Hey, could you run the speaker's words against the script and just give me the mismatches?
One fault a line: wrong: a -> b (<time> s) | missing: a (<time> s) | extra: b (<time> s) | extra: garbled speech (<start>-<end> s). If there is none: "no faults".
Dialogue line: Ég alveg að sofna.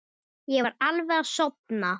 extra: var (0.7 s)